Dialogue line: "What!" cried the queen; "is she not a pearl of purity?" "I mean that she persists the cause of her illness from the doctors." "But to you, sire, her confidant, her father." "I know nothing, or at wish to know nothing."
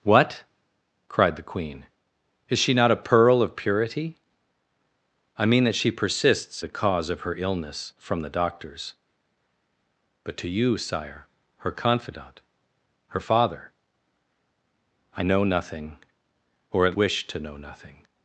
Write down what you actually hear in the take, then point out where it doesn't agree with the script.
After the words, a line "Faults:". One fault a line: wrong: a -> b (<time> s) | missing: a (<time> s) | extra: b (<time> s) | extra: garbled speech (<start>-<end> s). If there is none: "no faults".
"What!" cried the queen; "is she not a pearl of purity?" "I mean that she persists the cause of her illness from the doctors." "But to you, sire, her confidant, her father." "I know nothing, or at wish to know nothing."
Faults:
no faults